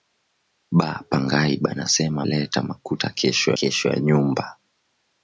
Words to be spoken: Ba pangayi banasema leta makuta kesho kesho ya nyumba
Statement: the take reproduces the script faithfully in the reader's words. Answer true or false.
true